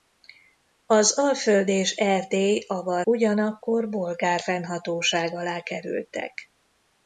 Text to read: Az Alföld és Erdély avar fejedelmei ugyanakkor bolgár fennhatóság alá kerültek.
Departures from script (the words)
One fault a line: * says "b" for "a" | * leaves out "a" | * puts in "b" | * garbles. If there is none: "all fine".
* leaves out "fejedelmei"